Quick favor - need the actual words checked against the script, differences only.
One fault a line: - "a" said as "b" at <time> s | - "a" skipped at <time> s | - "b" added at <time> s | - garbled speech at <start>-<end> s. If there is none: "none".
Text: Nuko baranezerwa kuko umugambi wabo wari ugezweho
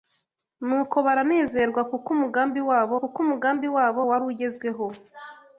- "kuko umugambi wabo" added at 3.0 s